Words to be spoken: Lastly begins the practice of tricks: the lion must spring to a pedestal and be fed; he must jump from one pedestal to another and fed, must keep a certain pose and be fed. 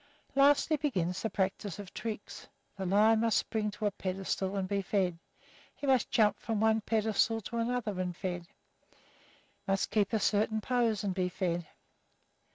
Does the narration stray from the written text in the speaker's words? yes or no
no